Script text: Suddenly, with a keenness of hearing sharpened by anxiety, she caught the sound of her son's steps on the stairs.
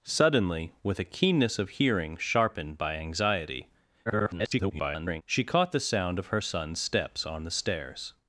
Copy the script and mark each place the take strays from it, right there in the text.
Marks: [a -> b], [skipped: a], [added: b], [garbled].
Suddenly, with a keenness of hearing sharpened by anxiety, [garbled] she caught the sound of her son's steps on the stairs.